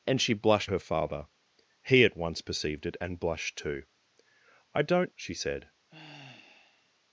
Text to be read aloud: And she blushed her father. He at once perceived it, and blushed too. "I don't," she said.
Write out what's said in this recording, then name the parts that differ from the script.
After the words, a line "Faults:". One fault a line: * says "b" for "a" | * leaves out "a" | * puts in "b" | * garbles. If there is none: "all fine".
And she blushed her father. He at once perceived it, and blushed too. "I don't," she said.
Faults:
all fine